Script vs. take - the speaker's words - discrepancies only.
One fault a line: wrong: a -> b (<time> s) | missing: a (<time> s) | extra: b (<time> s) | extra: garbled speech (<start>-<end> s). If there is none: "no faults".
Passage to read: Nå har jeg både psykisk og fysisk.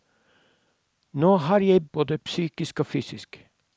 no faults